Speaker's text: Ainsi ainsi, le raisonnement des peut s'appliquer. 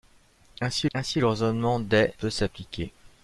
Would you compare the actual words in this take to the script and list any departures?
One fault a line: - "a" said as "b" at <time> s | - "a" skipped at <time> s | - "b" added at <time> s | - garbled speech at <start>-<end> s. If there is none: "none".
none